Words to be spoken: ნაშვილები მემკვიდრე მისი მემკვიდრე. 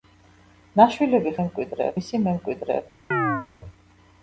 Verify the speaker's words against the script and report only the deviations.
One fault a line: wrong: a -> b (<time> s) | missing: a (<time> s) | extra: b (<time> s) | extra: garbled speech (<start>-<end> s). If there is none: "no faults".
no faults